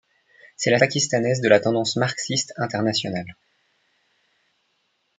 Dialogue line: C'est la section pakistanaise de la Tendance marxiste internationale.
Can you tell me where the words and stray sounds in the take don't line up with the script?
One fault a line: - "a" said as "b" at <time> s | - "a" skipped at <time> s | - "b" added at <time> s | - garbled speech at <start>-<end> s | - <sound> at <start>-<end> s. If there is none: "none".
- "section" skipped at 0.8 s